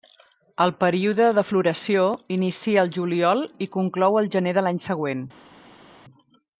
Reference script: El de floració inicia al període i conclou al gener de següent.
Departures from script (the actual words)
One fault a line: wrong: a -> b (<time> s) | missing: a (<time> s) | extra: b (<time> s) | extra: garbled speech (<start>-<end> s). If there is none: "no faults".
extra: període (0.8 s)
wrong: període -> juliol (3.0 s)
extra: l'any (4.7 s)